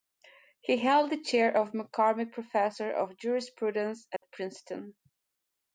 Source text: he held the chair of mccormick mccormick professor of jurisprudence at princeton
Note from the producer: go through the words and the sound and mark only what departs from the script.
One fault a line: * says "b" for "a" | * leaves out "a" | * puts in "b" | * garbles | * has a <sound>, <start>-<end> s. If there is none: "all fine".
* leaves out "mccormick"
* has a dropout, 4.2-4.2 s